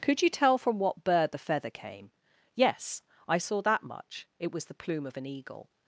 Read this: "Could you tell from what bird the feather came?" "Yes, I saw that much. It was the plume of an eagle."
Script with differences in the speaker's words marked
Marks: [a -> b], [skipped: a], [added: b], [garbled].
"Could you tell from what bird the feather came?" "Yes, I saw that much. It was the plume of an eagle."